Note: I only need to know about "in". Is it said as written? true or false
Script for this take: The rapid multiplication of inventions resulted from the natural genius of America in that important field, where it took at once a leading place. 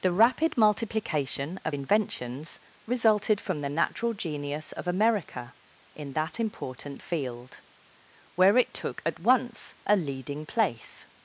true